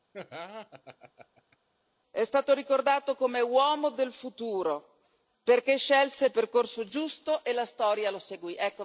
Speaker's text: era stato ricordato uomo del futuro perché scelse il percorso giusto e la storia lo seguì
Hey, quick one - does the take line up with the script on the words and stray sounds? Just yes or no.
no